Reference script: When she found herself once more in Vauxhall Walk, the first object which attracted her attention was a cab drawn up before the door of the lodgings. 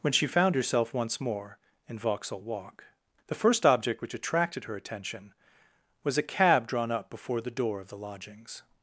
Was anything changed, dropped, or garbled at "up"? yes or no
no